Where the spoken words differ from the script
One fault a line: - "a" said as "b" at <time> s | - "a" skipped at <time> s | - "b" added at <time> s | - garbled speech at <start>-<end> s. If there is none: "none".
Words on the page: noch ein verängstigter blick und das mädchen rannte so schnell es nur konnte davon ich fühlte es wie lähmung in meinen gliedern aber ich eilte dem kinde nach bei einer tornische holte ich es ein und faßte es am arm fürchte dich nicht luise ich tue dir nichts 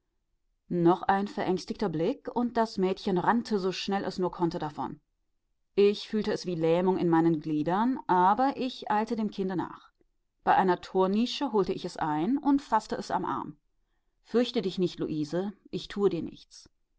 none